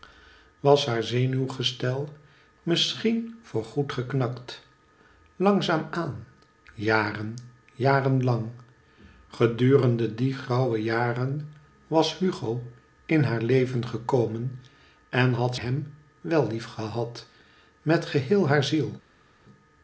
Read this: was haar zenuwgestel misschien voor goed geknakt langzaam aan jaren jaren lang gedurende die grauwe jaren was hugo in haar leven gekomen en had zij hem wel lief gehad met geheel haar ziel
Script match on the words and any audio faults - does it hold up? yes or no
no